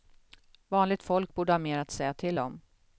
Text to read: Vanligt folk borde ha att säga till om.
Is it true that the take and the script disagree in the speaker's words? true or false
true